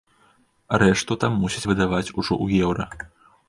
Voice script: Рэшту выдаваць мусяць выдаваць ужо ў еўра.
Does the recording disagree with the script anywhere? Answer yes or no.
yes